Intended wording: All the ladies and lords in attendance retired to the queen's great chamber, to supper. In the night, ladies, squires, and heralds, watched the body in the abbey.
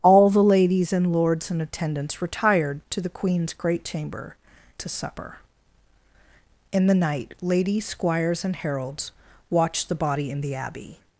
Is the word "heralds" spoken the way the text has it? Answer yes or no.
yes